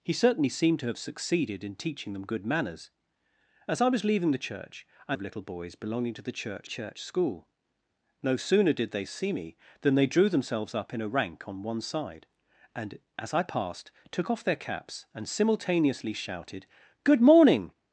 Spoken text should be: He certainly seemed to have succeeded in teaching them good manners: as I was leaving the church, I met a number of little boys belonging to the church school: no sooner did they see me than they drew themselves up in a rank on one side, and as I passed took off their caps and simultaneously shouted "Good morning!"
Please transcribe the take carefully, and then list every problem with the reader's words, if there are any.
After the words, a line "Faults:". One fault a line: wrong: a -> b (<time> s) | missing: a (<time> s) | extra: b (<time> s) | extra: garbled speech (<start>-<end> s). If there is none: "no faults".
He certainly seemed to have succeeded in teaching them good manners: as I was leaving the church, I of little boys belonging to the church church school: no sooner did they see me than they drew themselves up in a rank on one side, and as I passed took off their caps and simultaneously shouted "Good morning!"
Faults:
missing: met a number (5.2 s)
extra: church (6.6 s)